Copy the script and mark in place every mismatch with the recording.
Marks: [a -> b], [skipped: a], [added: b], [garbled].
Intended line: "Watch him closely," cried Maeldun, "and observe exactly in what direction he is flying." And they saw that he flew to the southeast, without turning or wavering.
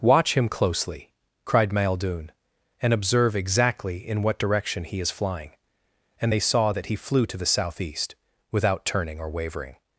"Watch him closely," cried Maeldun, "and observe exactly in what direction he is flying." And they saw that he flew to the southeast, without turning or wavering.